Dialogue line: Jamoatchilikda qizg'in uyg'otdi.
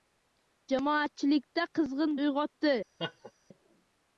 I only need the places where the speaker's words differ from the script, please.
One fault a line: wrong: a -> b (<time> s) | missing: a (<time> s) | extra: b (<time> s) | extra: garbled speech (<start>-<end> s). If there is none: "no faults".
no faults